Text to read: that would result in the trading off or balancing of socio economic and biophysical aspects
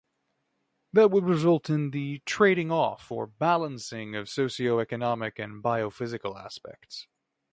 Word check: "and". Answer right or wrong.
right